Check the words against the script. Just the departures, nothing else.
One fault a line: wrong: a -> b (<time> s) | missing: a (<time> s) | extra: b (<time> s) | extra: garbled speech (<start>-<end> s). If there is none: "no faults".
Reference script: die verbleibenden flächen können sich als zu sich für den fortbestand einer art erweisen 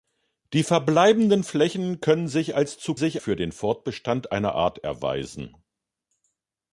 no faults